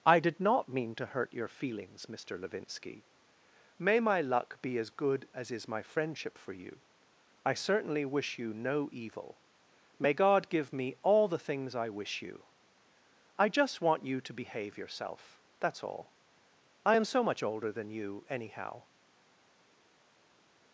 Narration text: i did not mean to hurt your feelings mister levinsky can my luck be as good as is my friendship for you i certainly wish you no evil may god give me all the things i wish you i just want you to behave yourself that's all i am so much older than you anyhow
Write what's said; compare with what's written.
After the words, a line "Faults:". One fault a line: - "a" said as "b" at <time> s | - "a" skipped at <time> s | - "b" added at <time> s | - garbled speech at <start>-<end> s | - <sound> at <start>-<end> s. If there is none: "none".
i did not mean to hurt your feelings mister levinsky may my luck be as good as is my friendship for you i certainly wish you no evil may god give me all the things i wish you i just want you to behave yourself that's all i am so much older than you anyhow
Faults:
- "can" said as "may" at 3.8 s